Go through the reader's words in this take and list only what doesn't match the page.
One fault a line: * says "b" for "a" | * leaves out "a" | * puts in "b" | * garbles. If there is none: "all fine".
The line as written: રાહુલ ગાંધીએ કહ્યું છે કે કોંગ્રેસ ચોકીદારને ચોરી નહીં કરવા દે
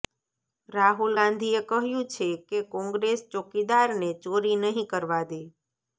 all fine